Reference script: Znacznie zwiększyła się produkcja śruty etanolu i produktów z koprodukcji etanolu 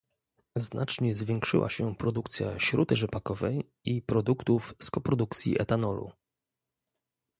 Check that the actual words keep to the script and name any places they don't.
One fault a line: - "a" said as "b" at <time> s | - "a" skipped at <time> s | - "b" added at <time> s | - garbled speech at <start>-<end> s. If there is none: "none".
- "etanolu" said as "rzepakowej" at 3.0 s